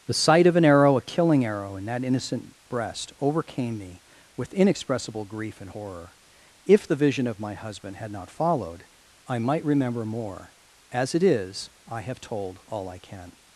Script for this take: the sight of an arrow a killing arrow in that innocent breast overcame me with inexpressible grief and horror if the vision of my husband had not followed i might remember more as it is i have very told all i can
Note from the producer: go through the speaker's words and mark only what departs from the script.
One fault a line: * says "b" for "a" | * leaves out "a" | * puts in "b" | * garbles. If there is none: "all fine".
* leaves out "very"